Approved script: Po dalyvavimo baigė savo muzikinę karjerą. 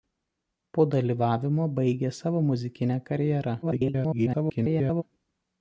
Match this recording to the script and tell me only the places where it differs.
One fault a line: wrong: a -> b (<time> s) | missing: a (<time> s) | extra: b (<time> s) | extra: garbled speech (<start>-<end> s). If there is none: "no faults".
extra: garbled speech (3.6-5.0 s)